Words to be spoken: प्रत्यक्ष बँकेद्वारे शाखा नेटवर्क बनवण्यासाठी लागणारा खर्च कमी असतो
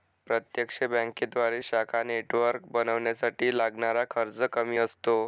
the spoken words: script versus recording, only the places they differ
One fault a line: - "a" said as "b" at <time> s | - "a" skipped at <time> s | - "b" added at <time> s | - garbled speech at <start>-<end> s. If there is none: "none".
none